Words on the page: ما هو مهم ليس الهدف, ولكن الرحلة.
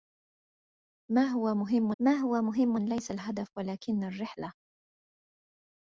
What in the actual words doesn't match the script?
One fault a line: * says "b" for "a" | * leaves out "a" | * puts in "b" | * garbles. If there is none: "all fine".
* puts in "ما هو مهم"